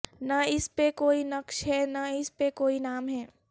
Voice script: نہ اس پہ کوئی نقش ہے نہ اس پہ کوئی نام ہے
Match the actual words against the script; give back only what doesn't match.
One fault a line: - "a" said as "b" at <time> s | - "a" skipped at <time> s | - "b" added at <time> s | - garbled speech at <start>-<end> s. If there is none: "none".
none